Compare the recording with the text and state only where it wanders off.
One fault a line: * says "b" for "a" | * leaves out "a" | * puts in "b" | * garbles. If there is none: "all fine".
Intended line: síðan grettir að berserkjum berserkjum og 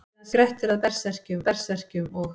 all fine